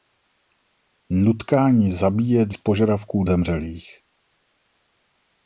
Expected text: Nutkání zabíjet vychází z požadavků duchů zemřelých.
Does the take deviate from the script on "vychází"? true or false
true